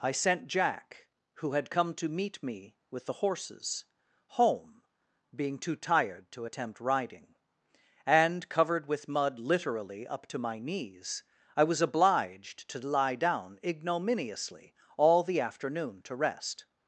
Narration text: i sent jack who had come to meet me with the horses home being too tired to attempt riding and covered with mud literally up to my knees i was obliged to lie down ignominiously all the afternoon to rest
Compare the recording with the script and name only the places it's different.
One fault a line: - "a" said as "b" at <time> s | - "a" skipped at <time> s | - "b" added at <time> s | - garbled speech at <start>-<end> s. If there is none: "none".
none